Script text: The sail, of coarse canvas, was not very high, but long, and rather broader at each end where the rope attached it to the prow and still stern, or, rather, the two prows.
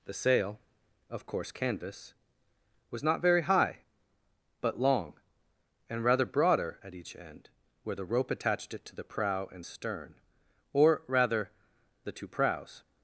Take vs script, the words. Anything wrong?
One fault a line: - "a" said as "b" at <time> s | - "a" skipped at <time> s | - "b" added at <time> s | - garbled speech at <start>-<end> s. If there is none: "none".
- "still" skipped at 9.7 s